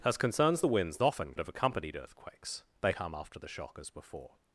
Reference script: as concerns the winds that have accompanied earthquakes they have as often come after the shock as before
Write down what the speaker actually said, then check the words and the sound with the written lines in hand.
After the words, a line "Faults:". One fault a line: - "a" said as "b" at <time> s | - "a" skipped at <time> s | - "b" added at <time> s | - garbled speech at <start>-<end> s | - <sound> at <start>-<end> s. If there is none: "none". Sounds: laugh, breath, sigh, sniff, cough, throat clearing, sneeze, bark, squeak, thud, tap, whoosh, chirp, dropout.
as concerns the winds often have accompanied earthquakes they come after the shock as before
Faults:
- "that" said as "often" at 1.0 s
- "have as often" skipped at 2.9 s